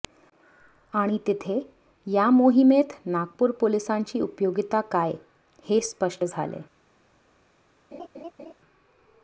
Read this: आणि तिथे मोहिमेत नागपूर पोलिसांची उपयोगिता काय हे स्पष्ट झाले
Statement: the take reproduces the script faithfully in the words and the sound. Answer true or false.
false